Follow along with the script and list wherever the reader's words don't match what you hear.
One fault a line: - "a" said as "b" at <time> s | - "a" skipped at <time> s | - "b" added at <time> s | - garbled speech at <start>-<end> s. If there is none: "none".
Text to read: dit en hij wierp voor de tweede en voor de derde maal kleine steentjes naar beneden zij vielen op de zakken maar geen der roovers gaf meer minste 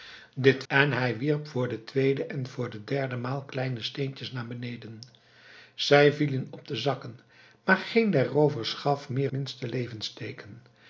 none